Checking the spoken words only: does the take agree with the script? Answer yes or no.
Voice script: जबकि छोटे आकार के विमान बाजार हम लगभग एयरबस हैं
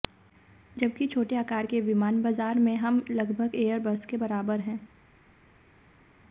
no